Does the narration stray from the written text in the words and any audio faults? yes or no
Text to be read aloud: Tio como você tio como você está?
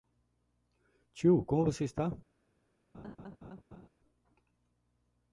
yes